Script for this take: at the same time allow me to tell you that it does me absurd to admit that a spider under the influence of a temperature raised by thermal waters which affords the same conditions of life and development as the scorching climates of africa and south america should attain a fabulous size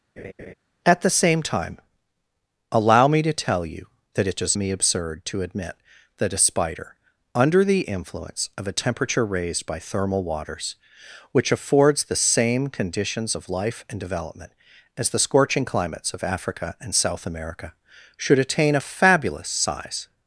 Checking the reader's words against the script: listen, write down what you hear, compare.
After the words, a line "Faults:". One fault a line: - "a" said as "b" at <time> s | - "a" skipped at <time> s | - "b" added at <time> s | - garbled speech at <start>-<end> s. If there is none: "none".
at the same time allow me to tell you that it does me absurd to admit that a spider under the influence of a temperature raised by thermal waters which affords the same conditions of life and development as the scorching climates of africa and south america should attain a fabulous size
Faults:
none